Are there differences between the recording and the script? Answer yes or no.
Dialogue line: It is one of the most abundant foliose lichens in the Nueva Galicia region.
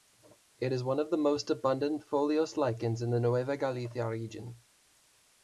no